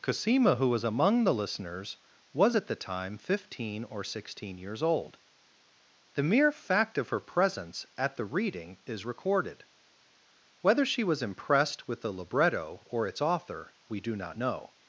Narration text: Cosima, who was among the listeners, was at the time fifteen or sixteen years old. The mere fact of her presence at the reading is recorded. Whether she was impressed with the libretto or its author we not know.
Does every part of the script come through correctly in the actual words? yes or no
no